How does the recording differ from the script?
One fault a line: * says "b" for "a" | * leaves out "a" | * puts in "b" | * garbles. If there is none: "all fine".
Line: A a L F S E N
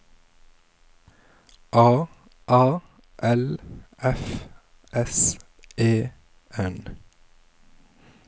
all fine